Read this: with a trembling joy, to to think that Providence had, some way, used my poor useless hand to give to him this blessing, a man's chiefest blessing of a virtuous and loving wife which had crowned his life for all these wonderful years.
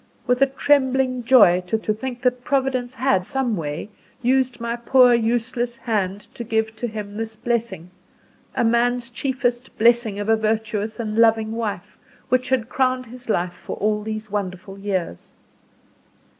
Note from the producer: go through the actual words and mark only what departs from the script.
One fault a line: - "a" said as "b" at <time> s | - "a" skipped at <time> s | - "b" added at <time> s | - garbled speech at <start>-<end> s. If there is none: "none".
none